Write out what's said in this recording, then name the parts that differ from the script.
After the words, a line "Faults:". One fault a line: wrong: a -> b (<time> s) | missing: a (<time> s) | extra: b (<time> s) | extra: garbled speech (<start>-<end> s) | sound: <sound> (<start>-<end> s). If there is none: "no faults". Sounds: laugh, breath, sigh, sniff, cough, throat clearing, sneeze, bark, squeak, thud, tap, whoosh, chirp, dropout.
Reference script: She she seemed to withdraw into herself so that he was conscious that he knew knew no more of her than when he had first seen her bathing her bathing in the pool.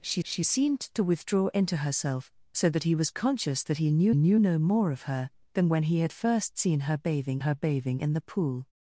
She she seemed to withdraw into herself so that he was conscious that he knew knew no more of her than when he had first seen her bathing her bathing in the pool.
Faults:
no faults